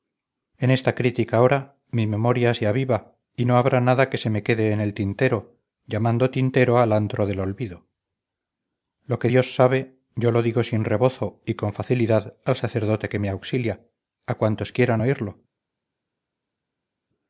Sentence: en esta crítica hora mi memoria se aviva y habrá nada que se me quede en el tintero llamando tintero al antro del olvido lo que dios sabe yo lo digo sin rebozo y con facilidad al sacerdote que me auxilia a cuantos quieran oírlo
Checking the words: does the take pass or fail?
fail